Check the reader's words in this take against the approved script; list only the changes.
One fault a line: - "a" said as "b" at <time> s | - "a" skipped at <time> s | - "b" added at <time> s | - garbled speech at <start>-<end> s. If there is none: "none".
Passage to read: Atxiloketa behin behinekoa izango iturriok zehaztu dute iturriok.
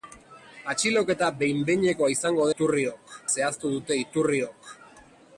none